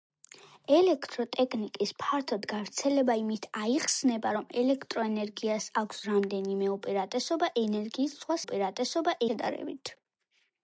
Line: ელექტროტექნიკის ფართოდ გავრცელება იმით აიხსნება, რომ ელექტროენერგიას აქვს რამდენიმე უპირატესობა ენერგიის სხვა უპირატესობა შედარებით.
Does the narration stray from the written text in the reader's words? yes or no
no